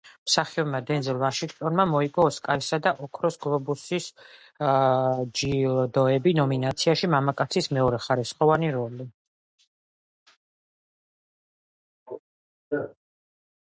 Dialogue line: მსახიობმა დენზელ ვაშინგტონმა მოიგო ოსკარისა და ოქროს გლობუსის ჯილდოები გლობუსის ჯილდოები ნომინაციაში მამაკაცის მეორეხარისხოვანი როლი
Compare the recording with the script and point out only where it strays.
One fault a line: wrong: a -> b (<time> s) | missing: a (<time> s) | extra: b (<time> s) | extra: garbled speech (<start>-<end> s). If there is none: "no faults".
missing: გლობუსის ჯილდოები (6.3 s)